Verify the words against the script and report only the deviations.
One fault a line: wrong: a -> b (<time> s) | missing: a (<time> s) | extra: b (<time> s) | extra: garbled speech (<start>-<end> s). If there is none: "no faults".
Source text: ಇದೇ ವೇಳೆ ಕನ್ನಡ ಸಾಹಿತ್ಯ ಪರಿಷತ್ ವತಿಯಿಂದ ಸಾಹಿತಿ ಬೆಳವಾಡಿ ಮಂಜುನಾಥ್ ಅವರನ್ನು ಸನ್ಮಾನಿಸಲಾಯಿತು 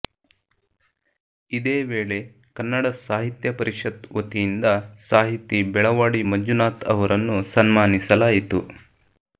no faults